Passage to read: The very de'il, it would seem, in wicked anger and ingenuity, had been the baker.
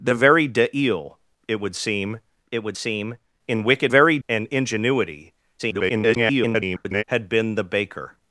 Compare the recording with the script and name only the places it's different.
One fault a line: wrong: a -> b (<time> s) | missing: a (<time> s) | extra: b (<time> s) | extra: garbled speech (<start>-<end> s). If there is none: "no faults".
extra: it would seem (2.5 s)
wrong: anger -> very (3.9 s)
extra: garbled speech (5.6-7.0 s)